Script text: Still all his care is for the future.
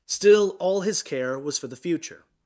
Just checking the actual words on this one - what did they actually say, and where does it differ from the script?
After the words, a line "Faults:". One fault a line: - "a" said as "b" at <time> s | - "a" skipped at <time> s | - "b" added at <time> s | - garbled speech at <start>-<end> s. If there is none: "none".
Still all his care was for the future.
Faults:
- "is" said as "was" at 1.4 s